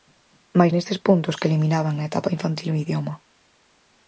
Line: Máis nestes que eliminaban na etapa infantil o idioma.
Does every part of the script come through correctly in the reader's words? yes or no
no